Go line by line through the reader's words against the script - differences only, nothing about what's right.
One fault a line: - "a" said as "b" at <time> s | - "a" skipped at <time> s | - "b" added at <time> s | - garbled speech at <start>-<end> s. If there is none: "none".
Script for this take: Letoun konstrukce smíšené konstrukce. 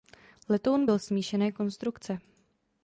- "konstrukce" said as "byl" at 0.8 s